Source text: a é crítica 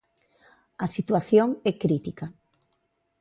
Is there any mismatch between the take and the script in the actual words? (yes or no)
yes